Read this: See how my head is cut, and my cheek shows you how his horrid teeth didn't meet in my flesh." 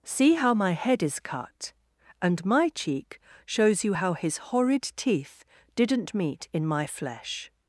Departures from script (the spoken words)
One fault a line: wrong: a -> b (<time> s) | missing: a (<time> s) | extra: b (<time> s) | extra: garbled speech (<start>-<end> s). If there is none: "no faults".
no faults